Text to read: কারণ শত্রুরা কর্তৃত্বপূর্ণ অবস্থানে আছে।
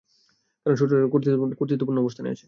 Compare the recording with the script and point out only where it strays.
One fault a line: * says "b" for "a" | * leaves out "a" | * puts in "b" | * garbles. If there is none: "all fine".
all fine